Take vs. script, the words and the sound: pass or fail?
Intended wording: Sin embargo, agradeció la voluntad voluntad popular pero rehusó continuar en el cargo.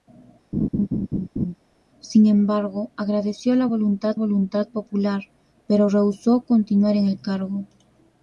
fail